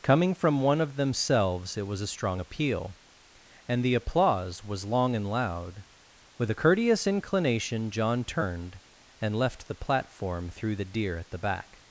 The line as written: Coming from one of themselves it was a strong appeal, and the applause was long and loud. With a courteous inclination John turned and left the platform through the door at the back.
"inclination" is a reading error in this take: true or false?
false